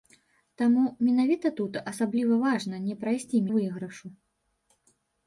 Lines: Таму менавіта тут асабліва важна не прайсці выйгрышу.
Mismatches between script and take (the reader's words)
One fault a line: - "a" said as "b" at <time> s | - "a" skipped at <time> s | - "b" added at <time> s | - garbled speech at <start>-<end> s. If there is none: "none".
none